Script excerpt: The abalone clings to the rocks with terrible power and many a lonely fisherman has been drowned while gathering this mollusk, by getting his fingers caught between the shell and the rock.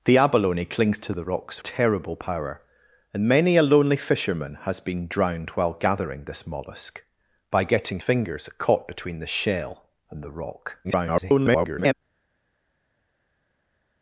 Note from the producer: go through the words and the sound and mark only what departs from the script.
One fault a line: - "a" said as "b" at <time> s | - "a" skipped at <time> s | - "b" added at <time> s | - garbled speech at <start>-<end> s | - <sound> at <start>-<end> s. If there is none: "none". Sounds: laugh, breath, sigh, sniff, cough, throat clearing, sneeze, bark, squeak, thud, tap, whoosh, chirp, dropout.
- "with" skipped at 1.6 s
- "his" skipped at 8.0 s
- garbled speech at 10.8-11.9 s